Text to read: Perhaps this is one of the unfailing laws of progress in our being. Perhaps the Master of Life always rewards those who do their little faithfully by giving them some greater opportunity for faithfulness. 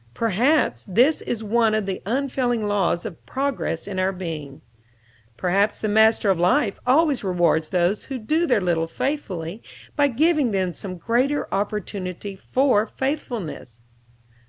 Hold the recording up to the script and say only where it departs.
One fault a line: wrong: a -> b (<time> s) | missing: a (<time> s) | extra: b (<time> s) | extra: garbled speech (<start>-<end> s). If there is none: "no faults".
no faults